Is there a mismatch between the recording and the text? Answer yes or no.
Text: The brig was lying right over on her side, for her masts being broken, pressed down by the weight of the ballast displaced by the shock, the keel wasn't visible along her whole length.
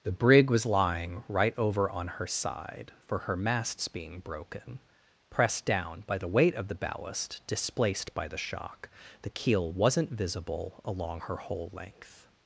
no